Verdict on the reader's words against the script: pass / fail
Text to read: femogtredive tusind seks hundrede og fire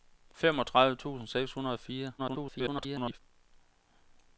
fail